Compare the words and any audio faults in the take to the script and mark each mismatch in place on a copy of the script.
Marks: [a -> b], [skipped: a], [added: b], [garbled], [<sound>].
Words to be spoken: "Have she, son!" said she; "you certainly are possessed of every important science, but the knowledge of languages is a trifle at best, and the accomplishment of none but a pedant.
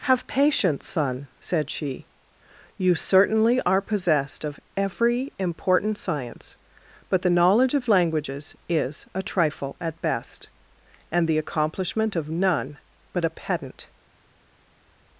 "Have [she, -> patience] son!" said she; "you certainly are possessed of every important science, but the knowledge of languages is a trifle at best, and the accomplishment of none but a pedant.